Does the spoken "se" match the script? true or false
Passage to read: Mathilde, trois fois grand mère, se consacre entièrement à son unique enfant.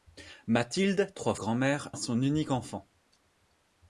false